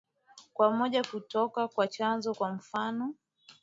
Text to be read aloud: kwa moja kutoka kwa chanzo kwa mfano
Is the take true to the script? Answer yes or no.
yes